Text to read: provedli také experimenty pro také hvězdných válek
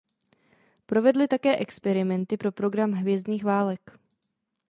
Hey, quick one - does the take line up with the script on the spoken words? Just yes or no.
no